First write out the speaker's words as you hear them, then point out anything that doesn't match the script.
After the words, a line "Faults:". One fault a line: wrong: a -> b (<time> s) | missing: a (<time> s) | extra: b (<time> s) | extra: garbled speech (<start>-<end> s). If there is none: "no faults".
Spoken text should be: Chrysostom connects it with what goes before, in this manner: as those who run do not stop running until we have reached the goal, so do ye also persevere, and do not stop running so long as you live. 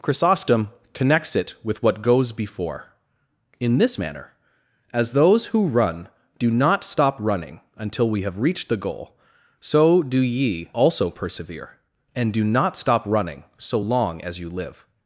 Chrysostom connects it with what goes before, in this manner: as those who run do not stop running until we have reached the goal, so do ye also persevere, and do not stop running so long as you live.
Faults:
no faults